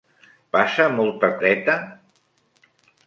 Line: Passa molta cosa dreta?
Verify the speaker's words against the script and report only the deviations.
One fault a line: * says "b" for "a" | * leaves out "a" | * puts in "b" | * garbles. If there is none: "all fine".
* leaves out "cosa"